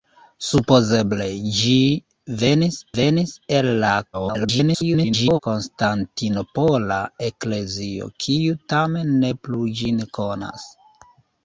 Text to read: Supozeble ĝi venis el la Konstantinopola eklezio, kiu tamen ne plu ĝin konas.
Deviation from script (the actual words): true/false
true